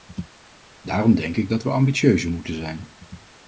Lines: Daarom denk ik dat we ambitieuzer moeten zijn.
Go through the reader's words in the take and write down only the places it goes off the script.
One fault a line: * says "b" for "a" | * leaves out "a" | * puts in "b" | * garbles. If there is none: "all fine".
all fine